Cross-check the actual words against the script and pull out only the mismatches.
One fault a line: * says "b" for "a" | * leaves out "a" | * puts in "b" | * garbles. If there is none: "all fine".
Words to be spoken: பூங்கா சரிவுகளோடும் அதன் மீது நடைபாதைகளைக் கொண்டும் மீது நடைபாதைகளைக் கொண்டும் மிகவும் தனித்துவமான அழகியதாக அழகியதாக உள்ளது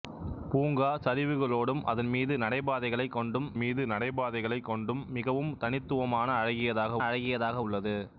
all fine